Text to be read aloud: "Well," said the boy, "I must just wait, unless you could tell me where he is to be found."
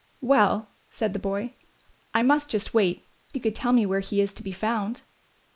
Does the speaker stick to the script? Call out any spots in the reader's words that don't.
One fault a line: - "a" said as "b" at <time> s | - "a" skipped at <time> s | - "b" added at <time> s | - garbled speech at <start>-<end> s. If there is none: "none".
- "unless" skipped at 3.1 s